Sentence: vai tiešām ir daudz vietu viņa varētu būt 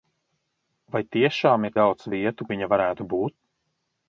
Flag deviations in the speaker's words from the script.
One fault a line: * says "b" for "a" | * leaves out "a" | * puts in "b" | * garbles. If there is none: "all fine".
all fine